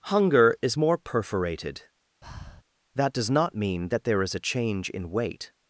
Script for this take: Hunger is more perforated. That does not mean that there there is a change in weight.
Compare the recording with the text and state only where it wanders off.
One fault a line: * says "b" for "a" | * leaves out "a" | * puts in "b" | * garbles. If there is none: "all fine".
* leaves out "there"